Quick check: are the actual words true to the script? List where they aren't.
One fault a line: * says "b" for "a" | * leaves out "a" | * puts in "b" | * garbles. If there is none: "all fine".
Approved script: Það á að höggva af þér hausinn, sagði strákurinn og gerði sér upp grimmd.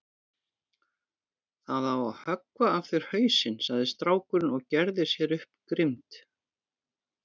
all fine